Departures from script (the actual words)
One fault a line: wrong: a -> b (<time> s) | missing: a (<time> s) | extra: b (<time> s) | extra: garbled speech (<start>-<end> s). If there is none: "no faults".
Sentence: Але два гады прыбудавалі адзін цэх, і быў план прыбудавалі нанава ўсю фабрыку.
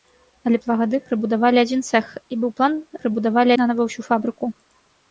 no faults